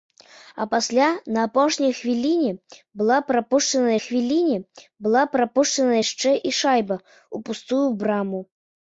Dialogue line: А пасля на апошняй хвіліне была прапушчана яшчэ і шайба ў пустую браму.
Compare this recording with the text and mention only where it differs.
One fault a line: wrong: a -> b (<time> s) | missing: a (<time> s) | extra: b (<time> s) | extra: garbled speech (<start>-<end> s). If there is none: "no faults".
extra: хвіліне была прапушчана (4.0 s)